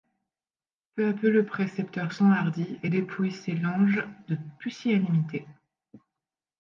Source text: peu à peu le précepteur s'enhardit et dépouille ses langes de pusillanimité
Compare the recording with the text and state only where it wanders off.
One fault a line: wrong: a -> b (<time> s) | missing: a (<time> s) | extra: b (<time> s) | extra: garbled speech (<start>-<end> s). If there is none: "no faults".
no faults